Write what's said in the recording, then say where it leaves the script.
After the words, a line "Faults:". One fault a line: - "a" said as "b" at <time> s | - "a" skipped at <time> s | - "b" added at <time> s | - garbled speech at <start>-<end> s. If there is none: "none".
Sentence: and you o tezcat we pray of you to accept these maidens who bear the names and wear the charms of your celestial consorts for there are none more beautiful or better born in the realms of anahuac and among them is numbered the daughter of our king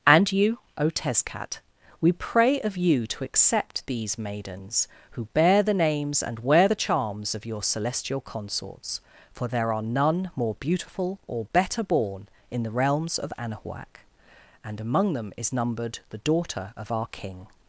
and you o tezcat we pray of you to accept these maidens who bear the names and wear the charms of your celestial consorts for there are none more beautiful or better born in the realms of anahuac and among them is numbered the daughter of our king
Faults:
none